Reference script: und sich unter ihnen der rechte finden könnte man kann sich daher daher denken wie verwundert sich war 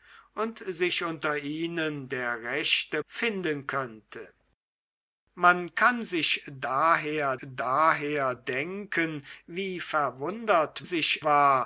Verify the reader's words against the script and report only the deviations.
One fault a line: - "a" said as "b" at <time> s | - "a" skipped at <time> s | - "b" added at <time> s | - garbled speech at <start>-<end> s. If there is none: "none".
none